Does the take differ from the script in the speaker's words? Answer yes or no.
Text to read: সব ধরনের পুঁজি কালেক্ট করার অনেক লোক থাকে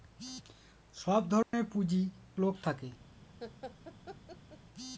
yes